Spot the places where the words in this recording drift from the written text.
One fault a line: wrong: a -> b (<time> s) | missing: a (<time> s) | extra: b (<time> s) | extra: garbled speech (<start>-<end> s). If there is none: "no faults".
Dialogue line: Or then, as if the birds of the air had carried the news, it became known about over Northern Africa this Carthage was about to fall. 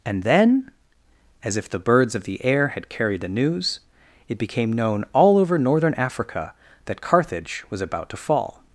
wrong: Or -> And (0.1 s)
wrong: about -> all (5.1 s)
wrong: this -> that (6.9 s)